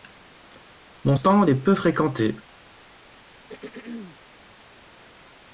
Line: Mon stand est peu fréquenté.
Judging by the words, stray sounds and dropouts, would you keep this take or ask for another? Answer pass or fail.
fail